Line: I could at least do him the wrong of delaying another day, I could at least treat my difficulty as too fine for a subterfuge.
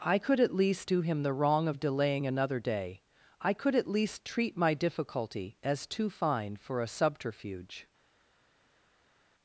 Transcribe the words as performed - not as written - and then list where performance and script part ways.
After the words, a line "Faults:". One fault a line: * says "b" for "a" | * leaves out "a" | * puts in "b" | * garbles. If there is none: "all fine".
I could at least do him the wrong of delaying another day, I could at least treat my difficulty as too fine for a subterfuge.
Faults:
all fine